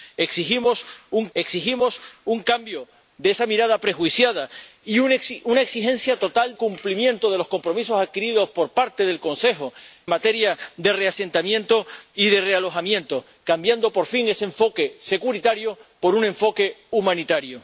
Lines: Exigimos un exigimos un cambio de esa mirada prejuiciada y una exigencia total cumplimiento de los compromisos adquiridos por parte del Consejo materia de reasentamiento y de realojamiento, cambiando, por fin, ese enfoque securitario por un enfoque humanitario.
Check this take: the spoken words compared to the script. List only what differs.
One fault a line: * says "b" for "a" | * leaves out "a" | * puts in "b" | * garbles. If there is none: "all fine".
all fine